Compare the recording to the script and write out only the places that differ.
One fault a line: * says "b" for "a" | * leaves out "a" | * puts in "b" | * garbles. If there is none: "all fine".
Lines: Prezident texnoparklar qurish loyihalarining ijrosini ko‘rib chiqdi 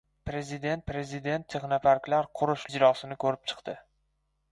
* puts in "prezident"
* leaves out "loyihalarining"